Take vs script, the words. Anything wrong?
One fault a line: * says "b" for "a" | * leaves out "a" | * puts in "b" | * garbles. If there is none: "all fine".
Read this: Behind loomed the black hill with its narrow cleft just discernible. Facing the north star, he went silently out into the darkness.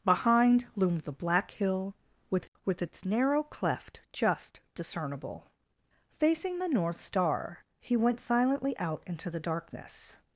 * puts in "with"